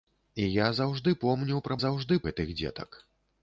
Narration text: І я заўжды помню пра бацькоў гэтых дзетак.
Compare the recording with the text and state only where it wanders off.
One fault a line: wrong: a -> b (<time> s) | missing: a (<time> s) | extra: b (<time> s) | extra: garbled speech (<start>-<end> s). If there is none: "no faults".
wrong: бацькоў -> заўжды (1.8 s)